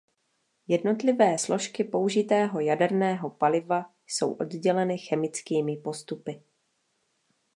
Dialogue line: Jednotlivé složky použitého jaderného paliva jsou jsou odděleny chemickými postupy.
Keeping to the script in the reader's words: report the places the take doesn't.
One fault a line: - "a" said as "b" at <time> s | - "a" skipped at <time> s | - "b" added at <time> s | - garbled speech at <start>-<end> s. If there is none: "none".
- "jsou" skipped at 4.3 s